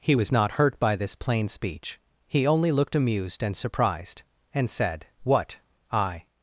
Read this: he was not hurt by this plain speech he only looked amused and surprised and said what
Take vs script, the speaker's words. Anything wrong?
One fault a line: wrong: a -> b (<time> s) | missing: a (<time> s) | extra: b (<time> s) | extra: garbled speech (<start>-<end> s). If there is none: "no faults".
extra: i (5.9 s)